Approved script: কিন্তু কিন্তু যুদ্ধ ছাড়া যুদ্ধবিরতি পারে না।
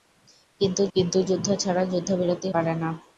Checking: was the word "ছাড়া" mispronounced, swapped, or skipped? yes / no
no